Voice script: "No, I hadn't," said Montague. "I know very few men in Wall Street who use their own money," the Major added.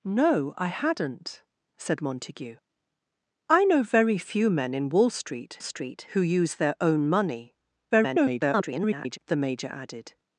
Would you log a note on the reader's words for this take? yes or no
yes